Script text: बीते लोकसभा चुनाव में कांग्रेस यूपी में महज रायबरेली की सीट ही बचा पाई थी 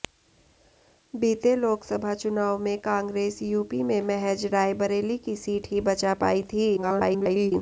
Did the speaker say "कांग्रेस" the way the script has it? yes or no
yes